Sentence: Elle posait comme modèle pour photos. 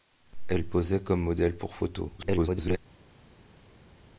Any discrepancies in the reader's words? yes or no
yes